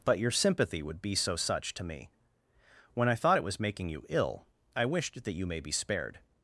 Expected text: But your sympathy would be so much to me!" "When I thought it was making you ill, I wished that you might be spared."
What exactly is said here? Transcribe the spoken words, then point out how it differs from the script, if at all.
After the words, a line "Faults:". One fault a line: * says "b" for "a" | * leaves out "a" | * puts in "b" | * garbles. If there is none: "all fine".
But your sympathy would be so such to me!" "When I thought it was making you ill, I wished that you may be spared."
Faults:
* says "such" for "much"
* says "may" for "might"